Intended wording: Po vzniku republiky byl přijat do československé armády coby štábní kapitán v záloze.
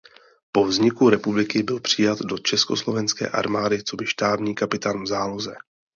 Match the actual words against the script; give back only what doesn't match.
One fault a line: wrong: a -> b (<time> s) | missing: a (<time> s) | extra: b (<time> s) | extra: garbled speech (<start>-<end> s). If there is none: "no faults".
no faults